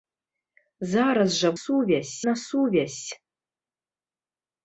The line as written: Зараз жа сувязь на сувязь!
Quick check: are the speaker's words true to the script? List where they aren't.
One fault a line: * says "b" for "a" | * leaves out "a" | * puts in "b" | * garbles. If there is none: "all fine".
all fine